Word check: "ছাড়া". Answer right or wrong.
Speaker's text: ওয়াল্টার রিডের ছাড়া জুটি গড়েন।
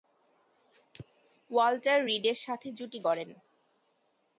wrong